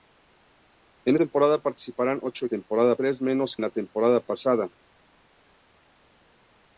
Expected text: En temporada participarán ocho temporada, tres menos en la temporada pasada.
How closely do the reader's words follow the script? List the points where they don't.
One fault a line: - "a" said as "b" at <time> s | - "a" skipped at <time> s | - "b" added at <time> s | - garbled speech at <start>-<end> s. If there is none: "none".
none